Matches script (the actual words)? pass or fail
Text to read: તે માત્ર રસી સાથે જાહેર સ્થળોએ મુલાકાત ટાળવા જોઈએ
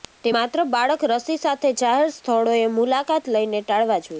fail